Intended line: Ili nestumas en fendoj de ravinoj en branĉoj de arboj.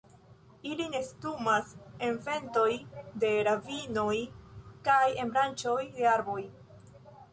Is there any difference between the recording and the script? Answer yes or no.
yes